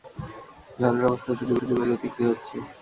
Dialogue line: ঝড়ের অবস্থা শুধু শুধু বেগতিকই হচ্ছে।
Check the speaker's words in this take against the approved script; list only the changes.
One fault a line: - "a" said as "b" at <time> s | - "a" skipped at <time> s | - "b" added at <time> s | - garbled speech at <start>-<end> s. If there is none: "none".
none